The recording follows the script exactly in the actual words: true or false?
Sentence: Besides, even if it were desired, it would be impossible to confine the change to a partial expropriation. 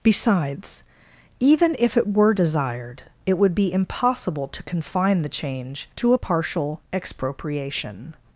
true